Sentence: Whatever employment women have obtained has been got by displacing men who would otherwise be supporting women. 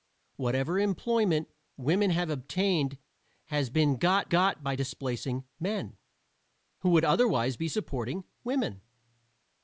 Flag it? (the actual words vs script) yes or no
yes